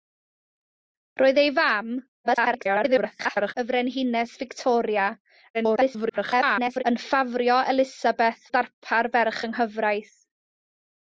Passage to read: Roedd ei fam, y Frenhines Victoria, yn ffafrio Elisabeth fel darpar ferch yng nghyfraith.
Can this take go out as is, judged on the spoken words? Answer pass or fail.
fail